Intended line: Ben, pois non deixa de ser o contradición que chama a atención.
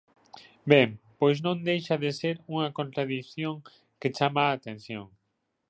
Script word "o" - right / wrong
wrong